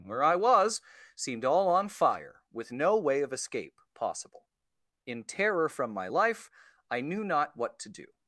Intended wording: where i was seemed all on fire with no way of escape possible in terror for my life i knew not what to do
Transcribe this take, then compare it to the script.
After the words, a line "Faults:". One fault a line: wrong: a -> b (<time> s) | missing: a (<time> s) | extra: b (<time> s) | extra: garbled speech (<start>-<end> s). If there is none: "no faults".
where i was seemed all on fire with no way of escape possible in terror from my life i knew not what to do
Faults:
wrong: for -> from (5.7 s)